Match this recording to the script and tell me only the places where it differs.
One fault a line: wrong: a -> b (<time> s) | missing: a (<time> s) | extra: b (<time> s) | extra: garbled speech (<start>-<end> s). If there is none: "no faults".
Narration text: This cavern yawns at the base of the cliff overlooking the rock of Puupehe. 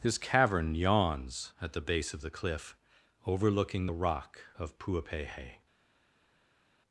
no faults